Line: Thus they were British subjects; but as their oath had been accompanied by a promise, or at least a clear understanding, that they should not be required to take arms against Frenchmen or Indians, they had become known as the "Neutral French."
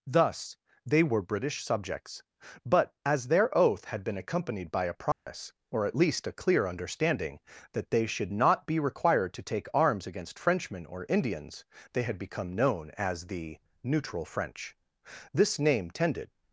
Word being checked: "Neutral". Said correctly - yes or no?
yes